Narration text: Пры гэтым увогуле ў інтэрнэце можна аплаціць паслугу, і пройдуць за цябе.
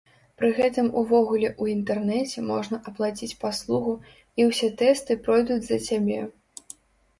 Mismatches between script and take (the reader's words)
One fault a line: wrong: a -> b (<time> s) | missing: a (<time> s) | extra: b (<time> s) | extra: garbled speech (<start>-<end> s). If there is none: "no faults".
extra: ўсе тэсты (4.5 s)